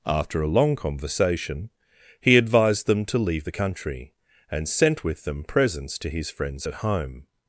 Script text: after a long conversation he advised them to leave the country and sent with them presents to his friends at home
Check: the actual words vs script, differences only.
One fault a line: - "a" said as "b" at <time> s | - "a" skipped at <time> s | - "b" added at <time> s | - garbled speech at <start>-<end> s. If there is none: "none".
none